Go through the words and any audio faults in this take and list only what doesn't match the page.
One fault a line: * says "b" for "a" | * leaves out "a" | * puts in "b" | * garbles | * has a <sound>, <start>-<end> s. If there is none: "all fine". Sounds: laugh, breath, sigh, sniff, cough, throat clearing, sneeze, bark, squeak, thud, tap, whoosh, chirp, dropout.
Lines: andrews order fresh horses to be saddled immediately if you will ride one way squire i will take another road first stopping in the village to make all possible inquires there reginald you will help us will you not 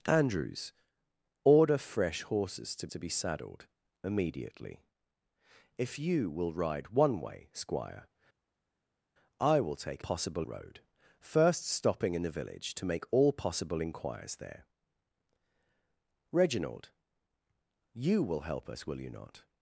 * puts in "to"
* says "possible" for "another"